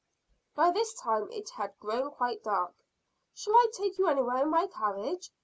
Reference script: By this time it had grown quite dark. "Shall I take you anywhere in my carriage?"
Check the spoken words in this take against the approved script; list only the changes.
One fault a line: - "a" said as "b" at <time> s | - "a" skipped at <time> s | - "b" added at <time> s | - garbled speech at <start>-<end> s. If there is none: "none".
none